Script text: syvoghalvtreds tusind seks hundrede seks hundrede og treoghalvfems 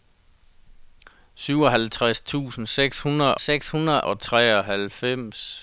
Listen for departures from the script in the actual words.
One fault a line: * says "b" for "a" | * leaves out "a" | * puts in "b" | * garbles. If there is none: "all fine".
all fine